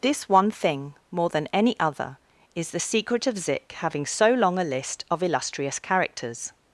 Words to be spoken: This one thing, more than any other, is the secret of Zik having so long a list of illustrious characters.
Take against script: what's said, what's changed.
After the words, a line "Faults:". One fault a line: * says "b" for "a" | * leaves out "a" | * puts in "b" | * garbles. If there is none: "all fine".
This one thing, more than any other, is the secret of Zik having so long a list of illustrious characters.
Faults:
all fine